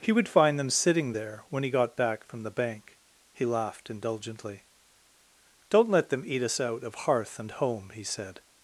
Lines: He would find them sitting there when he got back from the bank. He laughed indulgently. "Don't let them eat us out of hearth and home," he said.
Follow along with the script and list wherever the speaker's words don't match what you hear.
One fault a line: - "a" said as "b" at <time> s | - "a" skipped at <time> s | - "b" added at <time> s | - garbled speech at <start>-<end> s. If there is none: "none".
none